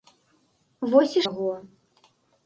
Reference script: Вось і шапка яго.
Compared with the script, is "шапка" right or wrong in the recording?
wrong